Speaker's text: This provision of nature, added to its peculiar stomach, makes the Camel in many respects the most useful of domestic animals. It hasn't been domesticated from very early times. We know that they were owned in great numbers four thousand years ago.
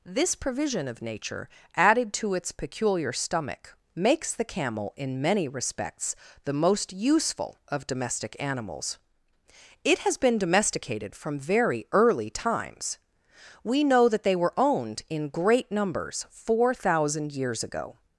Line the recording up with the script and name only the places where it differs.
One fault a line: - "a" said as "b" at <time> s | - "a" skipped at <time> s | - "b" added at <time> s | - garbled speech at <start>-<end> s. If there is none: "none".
- "hasn't" said as "has" at 10.0 s